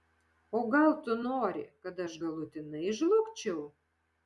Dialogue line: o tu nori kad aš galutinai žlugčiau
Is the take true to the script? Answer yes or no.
no